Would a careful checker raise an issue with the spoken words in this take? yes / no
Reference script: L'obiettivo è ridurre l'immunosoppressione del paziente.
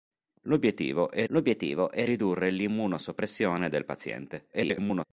yes